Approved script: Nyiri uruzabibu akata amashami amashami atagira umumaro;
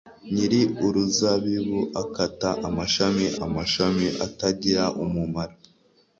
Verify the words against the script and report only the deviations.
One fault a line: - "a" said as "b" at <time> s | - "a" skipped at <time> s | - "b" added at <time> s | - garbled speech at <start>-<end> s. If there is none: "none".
none